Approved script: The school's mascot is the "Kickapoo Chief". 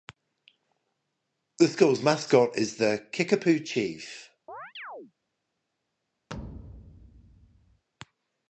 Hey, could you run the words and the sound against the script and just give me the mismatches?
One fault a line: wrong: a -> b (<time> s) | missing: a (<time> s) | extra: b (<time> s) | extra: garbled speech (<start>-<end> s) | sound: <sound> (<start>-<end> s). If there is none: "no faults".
sound: chirp (4.5-5.1 s)
sound: thud (6.3-7.8 s)